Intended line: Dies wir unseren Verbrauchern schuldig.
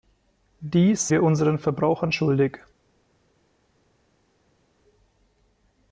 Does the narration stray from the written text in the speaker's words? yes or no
no